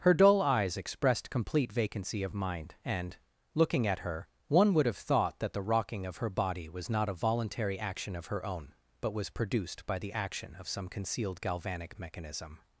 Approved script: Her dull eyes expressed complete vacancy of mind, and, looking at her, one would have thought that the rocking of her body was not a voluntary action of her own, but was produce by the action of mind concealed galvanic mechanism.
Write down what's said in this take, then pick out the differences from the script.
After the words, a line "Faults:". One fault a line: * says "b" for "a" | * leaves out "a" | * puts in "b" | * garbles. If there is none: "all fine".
Her dull eyes expressed complete vacancy of mind, and, looking at her, one would have thought that the rocking of her body was not a voluntary action of her own, but was produced by the action of some concealed galvanic mechanism.
Faults:
* says "produced" for "produce"
* says "some" for "mind"